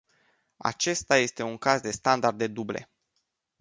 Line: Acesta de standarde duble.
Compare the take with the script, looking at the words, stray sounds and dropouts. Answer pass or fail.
fail